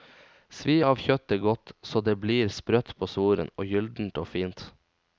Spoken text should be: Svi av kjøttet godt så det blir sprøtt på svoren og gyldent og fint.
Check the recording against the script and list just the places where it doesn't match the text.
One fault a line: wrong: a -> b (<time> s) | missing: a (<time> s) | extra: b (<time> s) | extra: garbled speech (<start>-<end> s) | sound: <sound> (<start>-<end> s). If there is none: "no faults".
no faults